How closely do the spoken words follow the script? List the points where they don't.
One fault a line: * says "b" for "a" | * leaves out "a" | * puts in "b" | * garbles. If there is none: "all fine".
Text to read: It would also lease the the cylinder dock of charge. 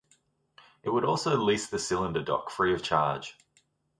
* leaves out "the"
* puts in "free"